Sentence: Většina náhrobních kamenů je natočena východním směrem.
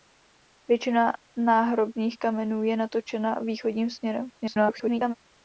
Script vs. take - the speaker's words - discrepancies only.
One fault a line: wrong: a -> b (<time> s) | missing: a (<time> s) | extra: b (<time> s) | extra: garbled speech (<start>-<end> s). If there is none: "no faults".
extra: garbled speech (4.4-5.1 s)